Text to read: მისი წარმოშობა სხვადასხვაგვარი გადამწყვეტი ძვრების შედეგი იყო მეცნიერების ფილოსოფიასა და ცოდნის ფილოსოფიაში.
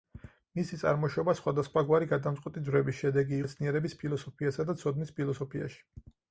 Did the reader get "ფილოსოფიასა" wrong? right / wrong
right